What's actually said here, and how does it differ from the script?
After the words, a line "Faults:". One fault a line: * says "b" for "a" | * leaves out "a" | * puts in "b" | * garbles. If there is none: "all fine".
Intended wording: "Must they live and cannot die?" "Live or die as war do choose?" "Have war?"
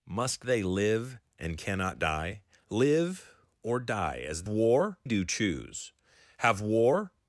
"Must they live and cannot die?" "Live or die as war do choose?" "Have war?"
Faults:
all fine